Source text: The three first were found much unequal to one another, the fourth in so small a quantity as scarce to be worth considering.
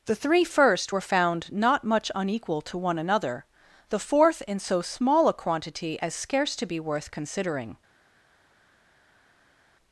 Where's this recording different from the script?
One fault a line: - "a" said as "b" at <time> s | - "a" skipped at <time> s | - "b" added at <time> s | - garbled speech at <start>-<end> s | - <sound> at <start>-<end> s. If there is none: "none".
- "not" added at 1.5 s